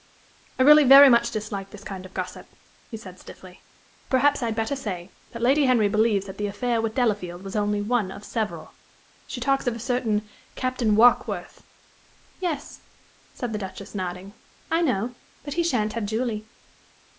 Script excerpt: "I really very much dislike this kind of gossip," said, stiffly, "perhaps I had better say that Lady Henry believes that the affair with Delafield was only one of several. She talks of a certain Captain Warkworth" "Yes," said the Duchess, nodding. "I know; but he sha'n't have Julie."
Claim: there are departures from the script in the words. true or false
false